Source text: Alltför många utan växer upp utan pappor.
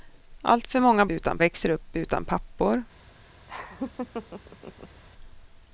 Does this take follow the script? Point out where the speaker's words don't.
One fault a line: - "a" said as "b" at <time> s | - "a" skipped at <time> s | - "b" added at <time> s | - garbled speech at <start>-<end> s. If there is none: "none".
none